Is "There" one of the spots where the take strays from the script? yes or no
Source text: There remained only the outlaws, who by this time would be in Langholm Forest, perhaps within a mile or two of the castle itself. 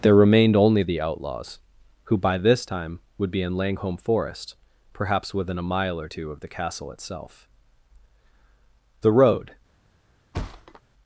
no